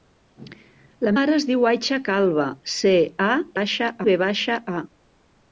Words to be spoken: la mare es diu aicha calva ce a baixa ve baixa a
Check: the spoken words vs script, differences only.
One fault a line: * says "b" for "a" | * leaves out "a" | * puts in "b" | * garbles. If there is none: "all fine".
all fine